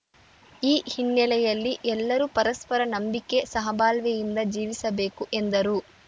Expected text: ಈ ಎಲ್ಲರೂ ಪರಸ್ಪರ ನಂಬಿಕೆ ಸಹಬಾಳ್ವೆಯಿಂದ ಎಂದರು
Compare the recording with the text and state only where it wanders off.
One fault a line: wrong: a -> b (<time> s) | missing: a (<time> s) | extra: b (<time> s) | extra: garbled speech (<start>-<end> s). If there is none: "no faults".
extra: ಹಿನ್ನೆಲೆಯಲ್ಲಿ (0.9 s)
extra: ಜೀವಿಸಬೇಕು (4.5 s)